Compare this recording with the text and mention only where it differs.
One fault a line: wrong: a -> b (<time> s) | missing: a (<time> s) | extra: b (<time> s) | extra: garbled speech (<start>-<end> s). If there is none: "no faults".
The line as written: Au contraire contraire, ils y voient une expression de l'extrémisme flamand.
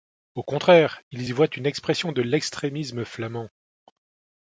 missing: contraire (1.0 s)